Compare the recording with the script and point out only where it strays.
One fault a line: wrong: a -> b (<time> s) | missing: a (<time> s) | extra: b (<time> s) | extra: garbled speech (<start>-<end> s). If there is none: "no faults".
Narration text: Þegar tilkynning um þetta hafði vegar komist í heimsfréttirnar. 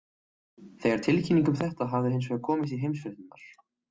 extra: hins (2.1 s)